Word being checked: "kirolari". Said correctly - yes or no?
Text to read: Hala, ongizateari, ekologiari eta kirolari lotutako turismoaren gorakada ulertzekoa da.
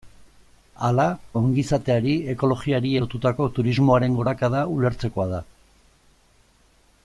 no